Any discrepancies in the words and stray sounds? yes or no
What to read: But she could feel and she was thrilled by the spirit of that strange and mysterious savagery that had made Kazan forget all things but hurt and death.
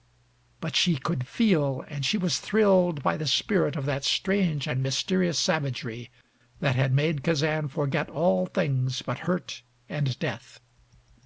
no